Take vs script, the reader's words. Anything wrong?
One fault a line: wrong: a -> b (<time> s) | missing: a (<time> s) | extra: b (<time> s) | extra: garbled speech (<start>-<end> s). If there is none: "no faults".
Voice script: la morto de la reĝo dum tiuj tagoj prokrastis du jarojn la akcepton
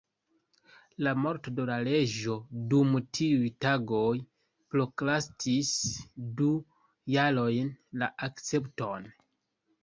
no faults